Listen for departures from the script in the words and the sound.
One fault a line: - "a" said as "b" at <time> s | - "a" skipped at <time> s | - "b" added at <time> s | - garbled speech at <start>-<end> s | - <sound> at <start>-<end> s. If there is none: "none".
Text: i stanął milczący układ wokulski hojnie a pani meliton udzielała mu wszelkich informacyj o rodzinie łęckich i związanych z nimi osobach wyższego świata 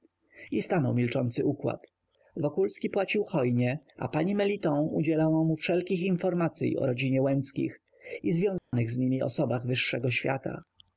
- "płacił" added at 2.9 s
- dropout at 8.6-8.7 s